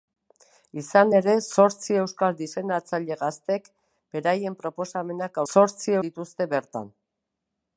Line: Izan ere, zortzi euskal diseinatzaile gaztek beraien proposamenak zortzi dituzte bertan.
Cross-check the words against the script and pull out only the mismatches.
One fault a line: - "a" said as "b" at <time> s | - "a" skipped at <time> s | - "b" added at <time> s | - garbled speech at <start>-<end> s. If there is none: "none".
none